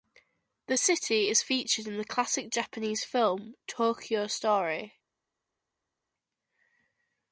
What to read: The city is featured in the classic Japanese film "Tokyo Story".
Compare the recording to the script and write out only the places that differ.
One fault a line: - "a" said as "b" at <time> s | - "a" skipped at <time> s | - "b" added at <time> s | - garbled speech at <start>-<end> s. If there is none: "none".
none